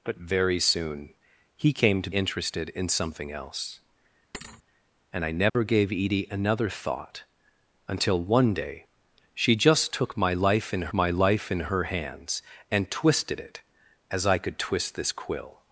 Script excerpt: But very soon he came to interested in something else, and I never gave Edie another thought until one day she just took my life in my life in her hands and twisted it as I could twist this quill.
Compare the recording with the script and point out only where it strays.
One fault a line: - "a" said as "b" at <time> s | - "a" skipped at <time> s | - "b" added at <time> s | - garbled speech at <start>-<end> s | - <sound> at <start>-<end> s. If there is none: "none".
- thud at 4.3-4.6 s
- dropout at 5.5-5.5 s